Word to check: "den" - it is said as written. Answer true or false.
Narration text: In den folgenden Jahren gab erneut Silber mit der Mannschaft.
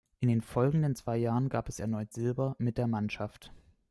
true